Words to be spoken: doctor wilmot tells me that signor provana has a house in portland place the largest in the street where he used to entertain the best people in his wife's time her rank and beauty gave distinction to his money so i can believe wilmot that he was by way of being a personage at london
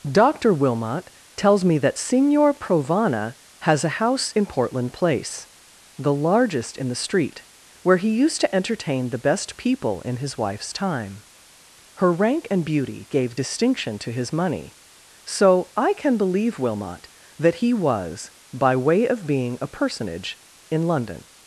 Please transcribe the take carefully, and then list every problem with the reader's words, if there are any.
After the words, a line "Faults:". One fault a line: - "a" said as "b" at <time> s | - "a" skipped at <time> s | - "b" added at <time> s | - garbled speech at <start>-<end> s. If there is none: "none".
doctor wilmot tells me that signor provana has a house in portland place the largest in the street where he used to entertain the best people in his wife's time her rank and beauty gave distinction to his money so i can believe wilmot that he was by way of being a personage in london
Faults:
- "at" said as "in" at 20.7 s